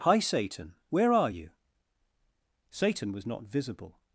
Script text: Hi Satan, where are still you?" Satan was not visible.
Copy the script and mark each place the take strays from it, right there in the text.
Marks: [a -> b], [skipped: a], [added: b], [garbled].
Hi Satan, where are [skipped: still] you?" Satan was not visible.